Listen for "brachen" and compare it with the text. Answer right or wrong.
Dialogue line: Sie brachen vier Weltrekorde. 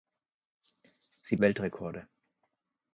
wrong